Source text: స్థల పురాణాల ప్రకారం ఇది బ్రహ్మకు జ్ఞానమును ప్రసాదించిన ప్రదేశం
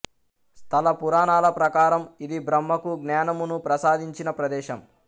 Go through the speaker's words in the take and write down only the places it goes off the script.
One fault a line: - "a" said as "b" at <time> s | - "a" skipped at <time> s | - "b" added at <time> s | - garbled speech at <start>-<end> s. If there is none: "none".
none